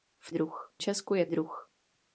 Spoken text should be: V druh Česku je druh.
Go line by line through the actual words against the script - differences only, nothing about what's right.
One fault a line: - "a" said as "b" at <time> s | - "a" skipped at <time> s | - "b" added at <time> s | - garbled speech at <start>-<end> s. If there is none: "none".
none